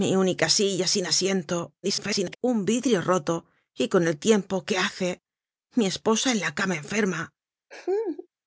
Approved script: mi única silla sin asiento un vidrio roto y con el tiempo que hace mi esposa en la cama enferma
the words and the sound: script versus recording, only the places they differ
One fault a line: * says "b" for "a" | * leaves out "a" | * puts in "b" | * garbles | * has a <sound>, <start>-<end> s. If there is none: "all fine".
* garbles
* has a laugh, 7.7-8.3 s